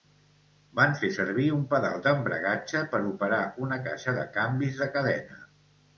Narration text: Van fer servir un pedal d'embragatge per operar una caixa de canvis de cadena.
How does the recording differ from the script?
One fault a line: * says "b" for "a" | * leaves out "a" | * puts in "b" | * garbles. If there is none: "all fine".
all fine